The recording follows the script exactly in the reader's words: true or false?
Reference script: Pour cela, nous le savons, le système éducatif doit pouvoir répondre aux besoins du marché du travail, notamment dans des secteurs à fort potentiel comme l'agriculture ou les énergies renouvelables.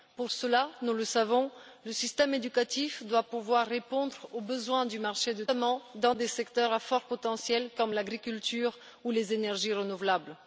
true